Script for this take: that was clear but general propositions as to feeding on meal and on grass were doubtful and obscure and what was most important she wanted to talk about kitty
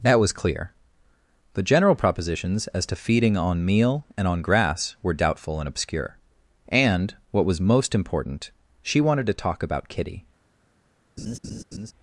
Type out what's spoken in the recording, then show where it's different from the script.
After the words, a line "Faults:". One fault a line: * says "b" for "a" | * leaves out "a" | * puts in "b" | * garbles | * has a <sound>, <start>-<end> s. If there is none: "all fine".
that was clear the general propositions as to feeding on meal and on grass were doubtful and obscure and what was most important she wanted to talk about kitty
Faults:
* says "the" for "but"
* has a laugh, 11.2-11.9 s